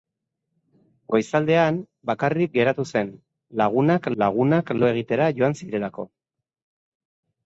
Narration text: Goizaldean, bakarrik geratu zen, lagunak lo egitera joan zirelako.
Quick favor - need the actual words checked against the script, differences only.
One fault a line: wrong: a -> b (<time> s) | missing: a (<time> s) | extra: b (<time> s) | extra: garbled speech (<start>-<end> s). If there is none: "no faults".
extra: lagunak (4.2 s)